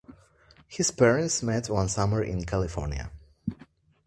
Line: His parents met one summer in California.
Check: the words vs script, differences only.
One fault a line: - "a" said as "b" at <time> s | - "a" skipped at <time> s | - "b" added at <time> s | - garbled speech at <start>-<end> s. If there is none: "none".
none